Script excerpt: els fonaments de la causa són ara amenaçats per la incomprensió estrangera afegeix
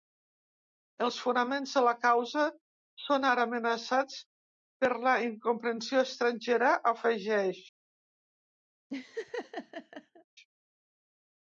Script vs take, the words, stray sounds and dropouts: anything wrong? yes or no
yes